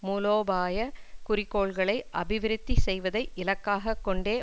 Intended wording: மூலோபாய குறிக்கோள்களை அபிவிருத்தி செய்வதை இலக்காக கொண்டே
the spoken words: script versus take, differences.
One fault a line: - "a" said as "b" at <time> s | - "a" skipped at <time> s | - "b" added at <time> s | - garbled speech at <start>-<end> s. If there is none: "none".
none